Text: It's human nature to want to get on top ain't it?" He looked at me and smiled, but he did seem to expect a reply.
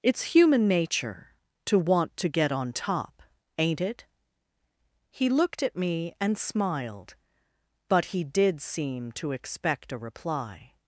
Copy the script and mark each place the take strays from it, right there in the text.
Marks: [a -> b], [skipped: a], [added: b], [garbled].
It's human nature to want to get on top ain't it?" He looked at me and smiled, but he did seem to expect a reply.